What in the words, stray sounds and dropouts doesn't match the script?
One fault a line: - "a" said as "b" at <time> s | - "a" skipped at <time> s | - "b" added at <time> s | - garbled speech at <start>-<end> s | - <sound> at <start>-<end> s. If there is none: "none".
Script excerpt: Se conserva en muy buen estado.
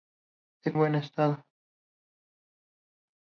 - "conserva en muy" skipped at 0.7 s